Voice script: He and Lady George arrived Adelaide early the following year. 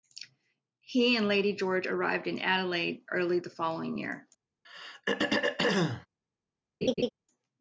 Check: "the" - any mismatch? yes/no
no